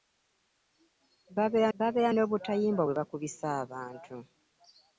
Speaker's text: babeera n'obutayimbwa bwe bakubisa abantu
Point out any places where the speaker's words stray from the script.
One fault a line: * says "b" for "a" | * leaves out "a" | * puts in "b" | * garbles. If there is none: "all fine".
* puts in "babeera"